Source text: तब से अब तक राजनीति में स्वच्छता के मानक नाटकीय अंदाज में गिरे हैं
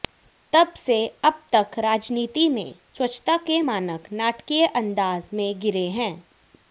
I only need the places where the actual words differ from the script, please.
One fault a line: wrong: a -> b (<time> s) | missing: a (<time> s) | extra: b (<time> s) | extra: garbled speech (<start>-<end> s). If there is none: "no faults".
no faults